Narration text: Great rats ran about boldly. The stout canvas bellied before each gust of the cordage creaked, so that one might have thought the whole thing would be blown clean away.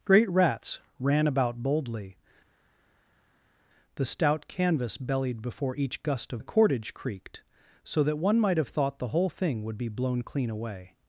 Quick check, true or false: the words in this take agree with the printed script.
true